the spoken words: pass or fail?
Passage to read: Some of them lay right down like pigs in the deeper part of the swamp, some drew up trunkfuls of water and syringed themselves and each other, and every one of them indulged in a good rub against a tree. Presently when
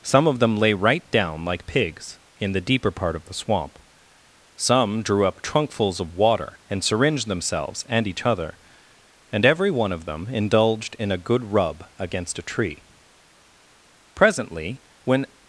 pass